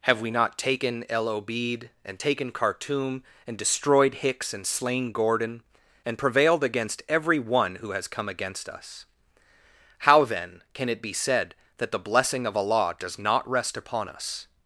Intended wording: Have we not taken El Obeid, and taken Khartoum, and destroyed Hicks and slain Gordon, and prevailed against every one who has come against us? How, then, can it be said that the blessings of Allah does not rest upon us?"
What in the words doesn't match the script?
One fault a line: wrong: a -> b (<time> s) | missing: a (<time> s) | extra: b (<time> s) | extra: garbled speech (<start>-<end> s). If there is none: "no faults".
wrong: blessings -> blessing (12.0 s)